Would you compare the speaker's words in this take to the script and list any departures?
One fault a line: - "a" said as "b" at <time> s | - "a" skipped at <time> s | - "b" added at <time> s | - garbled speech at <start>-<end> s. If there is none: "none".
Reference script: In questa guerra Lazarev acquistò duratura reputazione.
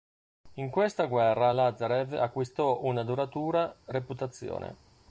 - "una" added at 2.8 s